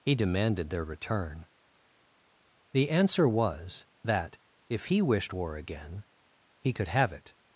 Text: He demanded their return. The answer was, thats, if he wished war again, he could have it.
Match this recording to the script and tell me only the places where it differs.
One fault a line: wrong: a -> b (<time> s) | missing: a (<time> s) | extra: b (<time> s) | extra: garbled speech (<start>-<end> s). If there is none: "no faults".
wrong: thats -> that (4.0 s)